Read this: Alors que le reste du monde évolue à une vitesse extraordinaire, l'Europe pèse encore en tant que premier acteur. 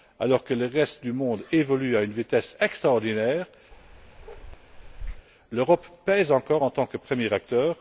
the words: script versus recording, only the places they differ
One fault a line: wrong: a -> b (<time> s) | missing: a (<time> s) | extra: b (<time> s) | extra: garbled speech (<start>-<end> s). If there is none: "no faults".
no faults